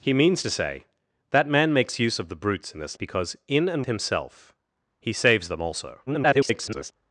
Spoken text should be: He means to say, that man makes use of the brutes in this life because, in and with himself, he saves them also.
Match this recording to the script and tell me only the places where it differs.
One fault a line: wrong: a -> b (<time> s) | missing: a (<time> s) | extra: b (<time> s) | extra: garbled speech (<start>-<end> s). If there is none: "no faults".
missing: life (3.0 s)
missing: with (3.9 s)
extra: garbled speech (6.1-6.9 s)